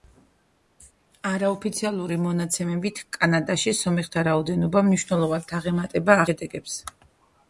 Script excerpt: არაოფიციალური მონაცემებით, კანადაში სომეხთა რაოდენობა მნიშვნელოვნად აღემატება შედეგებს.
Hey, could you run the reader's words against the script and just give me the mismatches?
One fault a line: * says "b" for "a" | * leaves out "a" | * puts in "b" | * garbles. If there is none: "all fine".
all fine